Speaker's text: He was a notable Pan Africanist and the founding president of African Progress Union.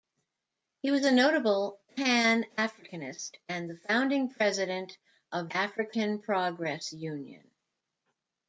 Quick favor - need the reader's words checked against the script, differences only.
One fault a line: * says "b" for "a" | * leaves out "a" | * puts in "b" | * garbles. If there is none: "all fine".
all fine